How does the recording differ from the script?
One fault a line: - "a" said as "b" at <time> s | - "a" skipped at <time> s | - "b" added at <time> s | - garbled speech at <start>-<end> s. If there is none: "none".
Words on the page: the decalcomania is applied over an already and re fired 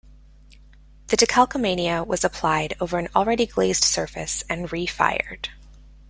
- "is" said as "was" at 2.1 s
- "glazed surface" added at 3.5 s